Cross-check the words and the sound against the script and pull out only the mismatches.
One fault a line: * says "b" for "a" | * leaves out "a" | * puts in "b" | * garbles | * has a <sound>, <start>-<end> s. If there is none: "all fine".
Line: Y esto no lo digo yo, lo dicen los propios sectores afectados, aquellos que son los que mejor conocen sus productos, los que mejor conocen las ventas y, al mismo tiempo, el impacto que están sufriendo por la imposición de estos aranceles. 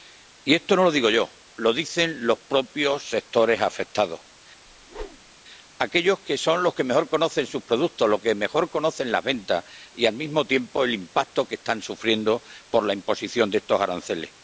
* has a whoosh, 4.7-5.3 s